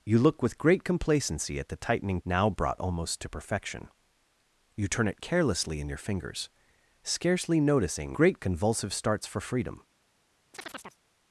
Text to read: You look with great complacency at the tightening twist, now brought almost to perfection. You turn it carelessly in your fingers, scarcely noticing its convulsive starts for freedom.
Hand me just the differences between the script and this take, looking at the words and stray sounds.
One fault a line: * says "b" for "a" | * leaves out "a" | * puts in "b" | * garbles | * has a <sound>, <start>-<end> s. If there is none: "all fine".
* leaves out "twist"
* says "great" for "its"
* has a chirp, 10.5-11.0 s